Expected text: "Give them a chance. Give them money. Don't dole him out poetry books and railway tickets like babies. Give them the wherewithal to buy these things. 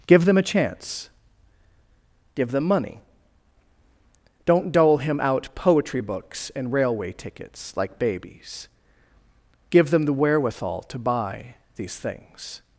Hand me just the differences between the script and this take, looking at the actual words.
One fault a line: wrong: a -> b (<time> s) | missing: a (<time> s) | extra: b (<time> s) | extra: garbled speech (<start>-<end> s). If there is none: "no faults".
no faults